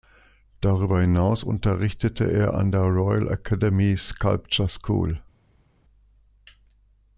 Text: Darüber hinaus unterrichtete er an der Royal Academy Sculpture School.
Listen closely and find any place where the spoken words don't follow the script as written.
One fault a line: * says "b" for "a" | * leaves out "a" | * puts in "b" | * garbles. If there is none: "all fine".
all fine